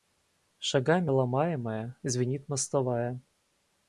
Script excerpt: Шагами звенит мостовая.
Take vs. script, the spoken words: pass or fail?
fail